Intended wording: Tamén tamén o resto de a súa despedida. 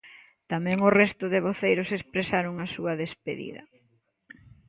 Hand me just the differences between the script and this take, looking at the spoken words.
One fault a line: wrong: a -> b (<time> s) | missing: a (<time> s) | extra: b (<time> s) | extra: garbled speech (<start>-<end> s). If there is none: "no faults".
missing: tamén (0.8 s)
extra: voceiros expresaron (1.5 s)